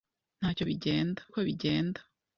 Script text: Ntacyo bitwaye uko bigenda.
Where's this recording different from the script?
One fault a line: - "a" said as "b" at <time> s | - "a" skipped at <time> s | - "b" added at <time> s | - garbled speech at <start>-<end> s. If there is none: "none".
- "bitwaye" said as "bigenda" at 0.7 s